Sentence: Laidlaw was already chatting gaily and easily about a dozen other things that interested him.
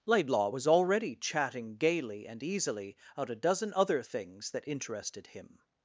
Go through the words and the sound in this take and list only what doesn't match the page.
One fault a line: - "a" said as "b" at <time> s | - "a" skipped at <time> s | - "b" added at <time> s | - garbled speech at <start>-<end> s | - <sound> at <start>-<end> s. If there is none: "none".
- "about" said as "out" at 3.2 s